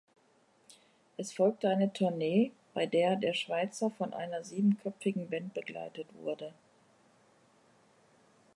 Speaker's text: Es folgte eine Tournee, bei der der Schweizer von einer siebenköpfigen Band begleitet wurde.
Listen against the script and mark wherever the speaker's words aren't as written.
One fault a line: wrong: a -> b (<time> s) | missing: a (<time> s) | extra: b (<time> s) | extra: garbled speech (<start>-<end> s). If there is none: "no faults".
no faults